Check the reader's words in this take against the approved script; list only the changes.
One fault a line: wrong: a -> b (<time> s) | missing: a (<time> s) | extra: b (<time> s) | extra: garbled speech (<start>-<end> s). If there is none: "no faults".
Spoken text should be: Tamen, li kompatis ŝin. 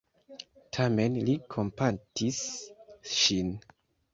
no faults